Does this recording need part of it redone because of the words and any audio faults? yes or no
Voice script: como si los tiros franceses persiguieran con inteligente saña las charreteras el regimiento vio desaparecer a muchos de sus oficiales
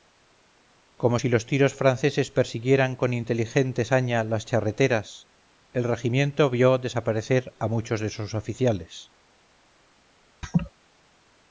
yes